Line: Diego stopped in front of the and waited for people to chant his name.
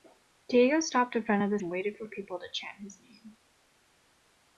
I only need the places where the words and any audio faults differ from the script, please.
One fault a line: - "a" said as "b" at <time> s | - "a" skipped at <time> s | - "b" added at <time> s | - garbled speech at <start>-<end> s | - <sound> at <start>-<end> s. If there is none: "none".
none